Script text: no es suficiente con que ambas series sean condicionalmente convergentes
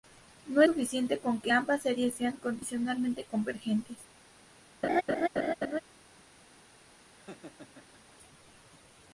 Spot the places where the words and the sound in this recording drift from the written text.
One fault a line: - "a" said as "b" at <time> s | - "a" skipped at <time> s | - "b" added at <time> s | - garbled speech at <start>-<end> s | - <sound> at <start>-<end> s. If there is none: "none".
- "es" skipped at 0.6 s
- laugh at 4.8-5.8 s
- laugh at 7.2-8.2 s